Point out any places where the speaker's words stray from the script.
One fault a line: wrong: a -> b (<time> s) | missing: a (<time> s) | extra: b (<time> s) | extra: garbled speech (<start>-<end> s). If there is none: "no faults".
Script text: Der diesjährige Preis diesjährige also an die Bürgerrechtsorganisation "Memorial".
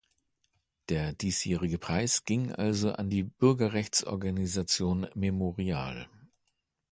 wrong: diesjährige -> ging (2.2 s)